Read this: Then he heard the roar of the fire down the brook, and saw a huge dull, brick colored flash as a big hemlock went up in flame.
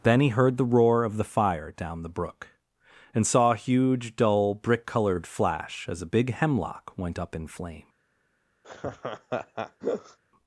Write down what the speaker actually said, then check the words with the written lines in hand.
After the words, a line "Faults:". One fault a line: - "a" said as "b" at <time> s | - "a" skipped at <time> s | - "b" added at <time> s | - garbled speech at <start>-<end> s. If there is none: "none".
Then he heard the roar of the fire down the brook, and saw a huge dull, brick colored flash as a big hemlock went up in flame.
Faults:
none